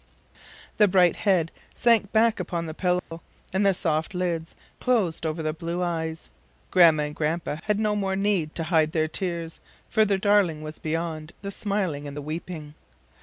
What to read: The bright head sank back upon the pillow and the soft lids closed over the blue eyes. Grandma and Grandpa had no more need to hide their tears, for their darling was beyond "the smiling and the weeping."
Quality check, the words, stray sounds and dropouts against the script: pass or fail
fail